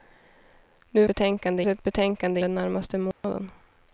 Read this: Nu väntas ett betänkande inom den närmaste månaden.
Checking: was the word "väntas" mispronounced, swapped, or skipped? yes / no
yes